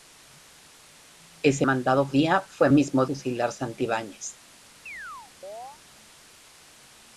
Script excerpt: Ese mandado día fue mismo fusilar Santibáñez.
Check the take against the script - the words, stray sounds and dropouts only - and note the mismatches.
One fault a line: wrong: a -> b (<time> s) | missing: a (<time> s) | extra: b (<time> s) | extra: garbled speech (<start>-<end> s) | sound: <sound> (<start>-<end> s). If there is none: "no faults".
sound: chirp (4.9-5.8 s)